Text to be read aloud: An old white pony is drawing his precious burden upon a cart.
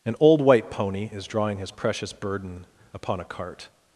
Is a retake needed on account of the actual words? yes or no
no